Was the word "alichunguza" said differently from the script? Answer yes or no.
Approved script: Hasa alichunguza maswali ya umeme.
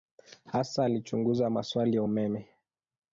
no